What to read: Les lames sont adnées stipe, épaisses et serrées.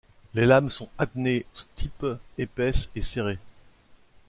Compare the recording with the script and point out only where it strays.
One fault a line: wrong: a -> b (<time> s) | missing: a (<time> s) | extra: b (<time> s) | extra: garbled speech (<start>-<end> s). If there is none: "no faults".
no faults